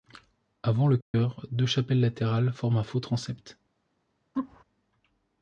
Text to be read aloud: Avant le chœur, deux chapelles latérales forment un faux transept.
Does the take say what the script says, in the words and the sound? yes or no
no